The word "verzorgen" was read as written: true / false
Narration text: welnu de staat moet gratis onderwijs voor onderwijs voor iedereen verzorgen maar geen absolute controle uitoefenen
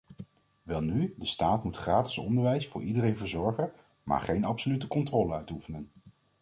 true